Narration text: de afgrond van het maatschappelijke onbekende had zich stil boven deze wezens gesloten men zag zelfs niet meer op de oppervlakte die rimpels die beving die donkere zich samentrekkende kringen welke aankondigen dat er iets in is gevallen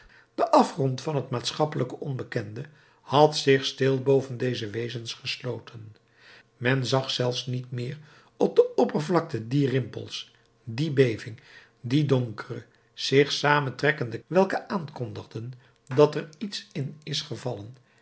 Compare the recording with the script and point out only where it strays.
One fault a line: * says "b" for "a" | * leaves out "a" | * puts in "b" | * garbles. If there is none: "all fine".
* leaves out "kringen"